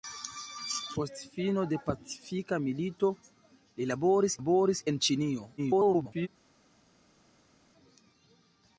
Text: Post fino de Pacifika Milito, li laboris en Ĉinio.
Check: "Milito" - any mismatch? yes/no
no